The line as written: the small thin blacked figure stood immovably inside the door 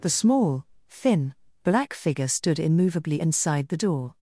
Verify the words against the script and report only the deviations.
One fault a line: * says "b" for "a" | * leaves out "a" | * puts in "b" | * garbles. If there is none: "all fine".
* says "black" for "blacked"